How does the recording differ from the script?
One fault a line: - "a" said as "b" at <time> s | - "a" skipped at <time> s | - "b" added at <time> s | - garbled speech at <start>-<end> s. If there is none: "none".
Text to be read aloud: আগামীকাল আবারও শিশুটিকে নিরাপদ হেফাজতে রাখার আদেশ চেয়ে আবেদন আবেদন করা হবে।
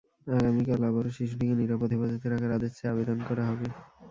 - "আবেদন" skipped at 3.2 s